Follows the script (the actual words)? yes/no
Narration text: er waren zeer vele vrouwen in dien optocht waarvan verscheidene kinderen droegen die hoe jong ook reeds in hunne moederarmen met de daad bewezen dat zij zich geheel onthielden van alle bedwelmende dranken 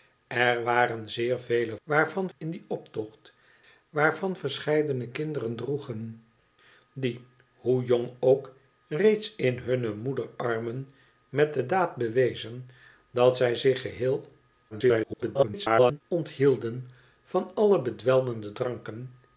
no